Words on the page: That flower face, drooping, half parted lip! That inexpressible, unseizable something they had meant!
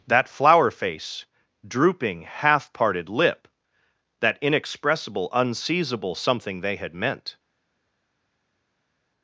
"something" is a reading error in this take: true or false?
false